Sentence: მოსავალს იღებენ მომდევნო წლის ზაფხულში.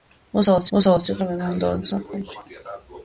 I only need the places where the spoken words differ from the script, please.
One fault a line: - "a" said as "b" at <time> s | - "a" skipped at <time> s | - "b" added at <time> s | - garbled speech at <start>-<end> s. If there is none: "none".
- "მოსავალს" added at 0.8 s
- "წლის" skipped at 1.9 s